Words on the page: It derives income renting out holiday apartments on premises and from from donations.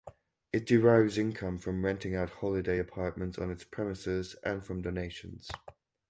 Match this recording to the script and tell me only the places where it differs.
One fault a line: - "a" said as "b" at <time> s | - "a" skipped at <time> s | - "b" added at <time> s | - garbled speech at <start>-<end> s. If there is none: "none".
- "from" added at 1.6 s
- "its" added at 3.5 s
- "from" skipped at 4.8 s